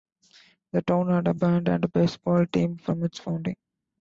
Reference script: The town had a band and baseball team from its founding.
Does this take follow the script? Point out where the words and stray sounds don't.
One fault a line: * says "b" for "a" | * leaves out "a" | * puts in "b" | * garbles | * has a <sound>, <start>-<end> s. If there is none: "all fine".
all fine